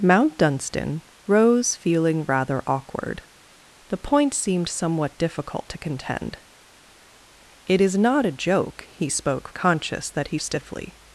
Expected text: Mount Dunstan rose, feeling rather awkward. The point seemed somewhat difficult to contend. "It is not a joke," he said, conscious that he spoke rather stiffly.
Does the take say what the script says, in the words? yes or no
no